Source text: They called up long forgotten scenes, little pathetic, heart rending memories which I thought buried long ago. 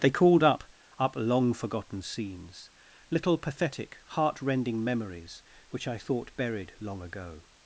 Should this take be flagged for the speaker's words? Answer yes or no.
yes